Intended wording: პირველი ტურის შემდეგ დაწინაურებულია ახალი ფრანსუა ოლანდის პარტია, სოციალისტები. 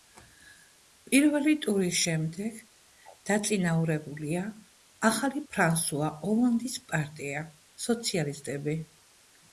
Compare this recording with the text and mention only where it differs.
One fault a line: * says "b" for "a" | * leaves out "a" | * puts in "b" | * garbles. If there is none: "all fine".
all fine